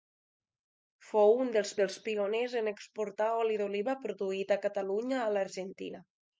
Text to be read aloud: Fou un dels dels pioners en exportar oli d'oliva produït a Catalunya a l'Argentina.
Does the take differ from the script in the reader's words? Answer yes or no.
no